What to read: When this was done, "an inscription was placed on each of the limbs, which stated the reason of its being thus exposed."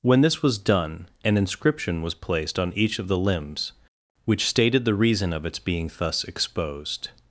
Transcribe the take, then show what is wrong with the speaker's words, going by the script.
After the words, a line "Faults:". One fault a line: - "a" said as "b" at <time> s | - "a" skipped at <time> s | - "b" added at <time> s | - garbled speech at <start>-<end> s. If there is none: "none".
When this was done, "an inscription was placed on each of the limbs, which stated the reason of its being thus exposed."
Faults:
none